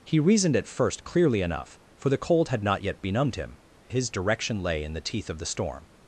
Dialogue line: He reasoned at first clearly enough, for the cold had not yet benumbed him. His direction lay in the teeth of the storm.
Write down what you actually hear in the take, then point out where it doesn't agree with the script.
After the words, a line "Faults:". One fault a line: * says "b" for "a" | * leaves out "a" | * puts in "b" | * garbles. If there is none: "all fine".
He reasoned at first clearly enough, for the cold had not yet benumbed him. His direction lay in the teeth of the storm.
Faults:
all fine